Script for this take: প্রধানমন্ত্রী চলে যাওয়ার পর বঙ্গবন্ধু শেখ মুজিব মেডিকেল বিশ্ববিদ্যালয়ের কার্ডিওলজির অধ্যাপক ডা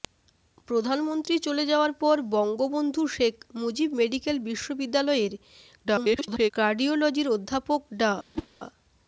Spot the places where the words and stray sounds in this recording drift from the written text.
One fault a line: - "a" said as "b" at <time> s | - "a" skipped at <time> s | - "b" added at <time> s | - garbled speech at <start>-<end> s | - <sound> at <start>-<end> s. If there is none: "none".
- garbled speech at 5.8-6.5 s
- whoosh at 8.3-8.5 s